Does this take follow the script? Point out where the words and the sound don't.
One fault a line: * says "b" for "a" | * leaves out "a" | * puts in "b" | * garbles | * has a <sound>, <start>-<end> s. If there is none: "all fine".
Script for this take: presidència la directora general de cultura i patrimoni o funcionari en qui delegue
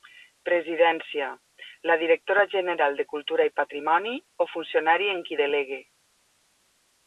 all fine